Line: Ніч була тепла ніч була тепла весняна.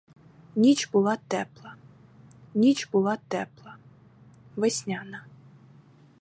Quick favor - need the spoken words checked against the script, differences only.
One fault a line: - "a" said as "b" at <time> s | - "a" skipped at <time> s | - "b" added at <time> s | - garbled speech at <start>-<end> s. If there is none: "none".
none